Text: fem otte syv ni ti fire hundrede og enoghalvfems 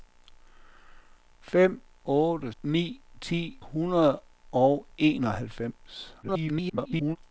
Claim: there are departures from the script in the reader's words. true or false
true